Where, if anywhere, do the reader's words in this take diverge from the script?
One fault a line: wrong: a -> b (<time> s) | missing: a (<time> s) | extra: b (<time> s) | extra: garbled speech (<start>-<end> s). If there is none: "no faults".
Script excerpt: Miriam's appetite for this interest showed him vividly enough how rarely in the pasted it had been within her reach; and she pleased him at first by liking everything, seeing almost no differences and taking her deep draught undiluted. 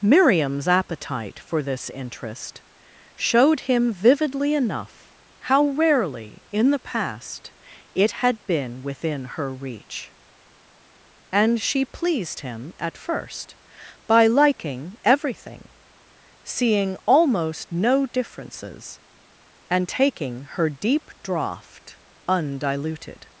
wrong: pasted -> past (6.8 s)